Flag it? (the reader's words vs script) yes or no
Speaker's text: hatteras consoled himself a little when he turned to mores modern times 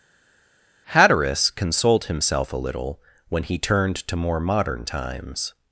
yes